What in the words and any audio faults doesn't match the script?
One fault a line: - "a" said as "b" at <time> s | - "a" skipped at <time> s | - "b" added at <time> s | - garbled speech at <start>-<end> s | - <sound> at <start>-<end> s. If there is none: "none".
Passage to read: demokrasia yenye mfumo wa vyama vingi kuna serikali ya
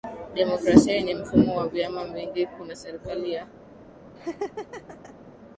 - laugh at 4.2-5.1 s